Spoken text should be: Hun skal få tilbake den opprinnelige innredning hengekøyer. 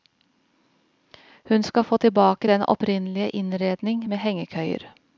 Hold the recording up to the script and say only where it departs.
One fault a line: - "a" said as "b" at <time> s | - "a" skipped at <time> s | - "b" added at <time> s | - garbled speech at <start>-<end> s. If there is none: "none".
- "med" added at 4.1 s